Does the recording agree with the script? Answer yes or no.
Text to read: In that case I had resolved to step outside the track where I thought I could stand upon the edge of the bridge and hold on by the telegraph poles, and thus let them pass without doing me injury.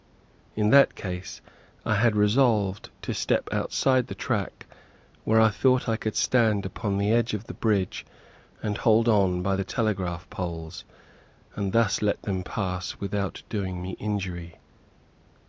yes